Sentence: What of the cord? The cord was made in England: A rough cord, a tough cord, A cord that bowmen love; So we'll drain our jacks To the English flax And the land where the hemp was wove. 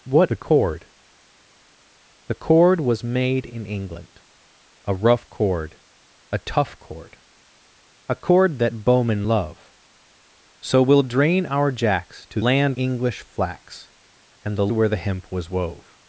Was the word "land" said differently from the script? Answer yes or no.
yes